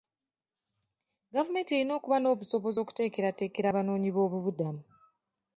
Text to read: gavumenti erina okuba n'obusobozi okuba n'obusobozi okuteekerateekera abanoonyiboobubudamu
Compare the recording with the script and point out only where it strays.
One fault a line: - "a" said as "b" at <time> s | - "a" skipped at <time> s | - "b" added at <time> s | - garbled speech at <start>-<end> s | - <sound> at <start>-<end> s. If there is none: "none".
- "okuba n'obusobozi" skipped at 2.8 s